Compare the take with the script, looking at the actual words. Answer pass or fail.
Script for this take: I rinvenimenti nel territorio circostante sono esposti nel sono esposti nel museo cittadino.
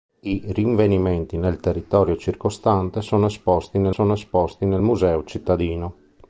pass